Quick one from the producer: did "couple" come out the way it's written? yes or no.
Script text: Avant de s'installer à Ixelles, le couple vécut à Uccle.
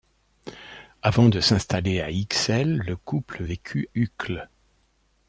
yes